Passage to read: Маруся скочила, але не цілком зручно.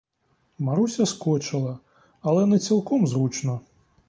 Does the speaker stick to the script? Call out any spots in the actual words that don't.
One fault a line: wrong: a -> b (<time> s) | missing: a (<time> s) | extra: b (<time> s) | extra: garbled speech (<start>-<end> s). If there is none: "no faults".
no faults